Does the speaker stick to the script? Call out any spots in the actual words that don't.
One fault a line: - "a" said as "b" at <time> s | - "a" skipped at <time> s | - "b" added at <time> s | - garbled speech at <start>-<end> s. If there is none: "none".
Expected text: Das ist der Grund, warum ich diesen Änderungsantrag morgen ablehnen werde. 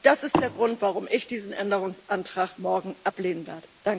none